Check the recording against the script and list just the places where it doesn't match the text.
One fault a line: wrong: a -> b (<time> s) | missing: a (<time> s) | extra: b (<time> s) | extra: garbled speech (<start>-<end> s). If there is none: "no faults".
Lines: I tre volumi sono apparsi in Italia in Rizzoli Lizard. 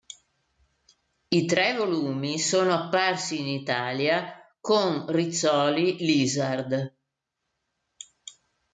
wrong: in -> con (4.6 s)